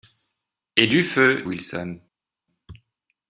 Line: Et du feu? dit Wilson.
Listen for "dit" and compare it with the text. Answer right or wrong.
wrong